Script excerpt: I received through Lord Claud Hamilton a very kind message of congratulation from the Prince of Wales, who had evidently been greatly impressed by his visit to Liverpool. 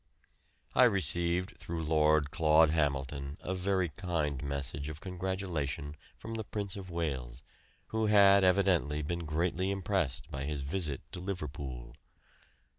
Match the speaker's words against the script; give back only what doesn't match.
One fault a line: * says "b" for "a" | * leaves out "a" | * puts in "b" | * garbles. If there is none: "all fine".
all fine